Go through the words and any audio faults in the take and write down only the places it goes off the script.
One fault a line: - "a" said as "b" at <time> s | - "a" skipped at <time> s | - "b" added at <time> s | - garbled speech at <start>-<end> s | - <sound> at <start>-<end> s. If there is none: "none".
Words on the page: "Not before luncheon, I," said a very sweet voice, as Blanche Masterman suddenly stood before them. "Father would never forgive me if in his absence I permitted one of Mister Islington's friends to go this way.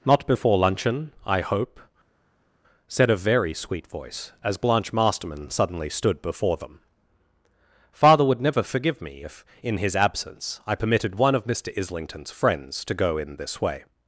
- "hope" added at 1.4 s
- "in" added at 13.2 s